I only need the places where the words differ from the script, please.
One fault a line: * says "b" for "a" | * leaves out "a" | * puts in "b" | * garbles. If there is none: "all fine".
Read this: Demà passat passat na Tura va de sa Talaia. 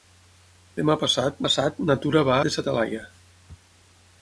all fine